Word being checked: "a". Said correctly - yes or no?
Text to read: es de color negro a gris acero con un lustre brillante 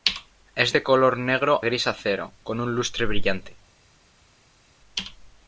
no